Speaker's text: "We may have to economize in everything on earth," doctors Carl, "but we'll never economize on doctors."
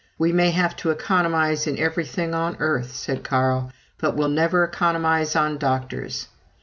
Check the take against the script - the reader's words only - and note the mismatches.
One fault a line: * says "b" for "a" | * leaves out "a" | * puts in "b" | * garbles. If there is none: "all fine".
* says "said" for "doctors"